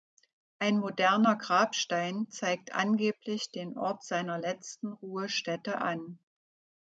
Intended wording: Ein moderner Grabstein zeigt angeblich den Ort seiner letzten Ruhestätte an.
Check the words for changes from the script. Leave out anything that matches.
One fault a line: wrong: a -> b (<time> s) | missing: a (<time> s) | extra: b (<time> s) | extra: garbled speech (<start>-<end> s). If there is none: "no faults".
no faults